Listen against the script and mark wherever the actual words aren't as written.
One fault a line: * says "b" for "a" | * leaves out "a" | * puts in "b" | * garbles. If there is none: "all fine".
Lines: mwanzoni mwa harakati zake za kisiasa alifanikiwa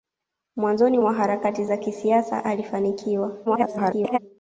* leaves out "zake"
* garbles